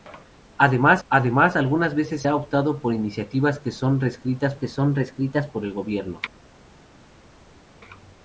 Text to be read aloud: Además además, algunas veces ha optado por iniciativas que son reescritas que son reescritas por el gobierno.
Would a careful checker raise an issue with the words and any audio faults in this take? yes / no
no